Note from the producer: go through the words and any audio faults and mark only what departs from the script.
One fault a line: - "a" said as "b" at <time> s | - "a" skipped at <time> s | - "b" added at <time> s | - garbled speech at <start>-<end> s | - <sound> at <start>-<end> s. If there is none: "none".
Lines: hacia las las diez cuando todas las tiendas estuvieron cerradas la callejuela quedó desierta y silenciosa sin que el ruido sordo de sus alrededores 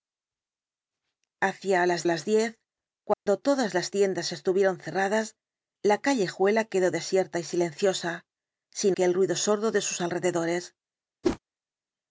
- dropout at 3.1-3.3 s
- whoosh at 11.2-11.4 s